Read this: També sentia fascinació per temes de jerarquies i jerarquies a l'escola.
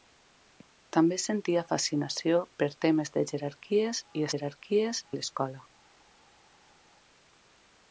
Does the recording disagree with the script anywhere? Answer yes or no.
no